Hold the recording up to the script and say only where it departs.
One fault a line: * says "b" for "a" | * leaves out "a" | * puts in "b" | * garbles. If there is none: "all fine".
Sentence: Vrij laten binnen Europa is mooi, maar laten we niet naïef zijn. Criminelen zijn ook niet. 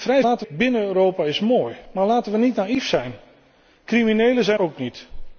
all fine